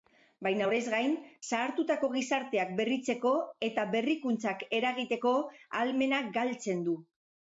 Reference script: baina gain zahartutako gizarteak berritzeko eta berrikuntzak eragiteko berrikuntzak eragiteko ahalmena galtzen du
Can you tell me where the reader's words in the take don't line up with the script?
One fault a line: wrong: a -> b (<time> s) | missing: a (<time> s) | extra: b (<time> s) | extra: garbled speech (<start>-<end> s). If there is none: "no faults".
extra: horrez (0.6 s)
missing: berrikuntzak eragiteko (5.4 s)